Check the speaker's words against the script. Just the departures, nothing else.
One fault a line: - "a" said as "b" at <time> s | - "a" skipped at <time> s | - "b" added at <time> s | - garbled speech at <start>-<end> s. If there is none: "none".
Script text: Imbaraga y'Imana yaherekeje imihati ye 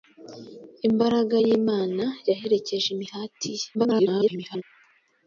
- garbled speech at 3.7-4.6 s